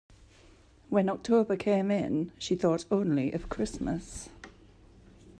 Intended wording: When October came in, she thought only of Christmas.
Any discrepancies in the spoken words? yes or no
no